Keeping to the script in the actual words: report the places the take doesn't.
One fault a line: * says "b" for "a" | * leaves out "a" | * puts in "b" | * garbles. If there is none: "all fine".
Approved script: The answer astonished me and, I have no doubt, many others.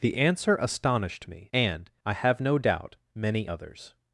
all fine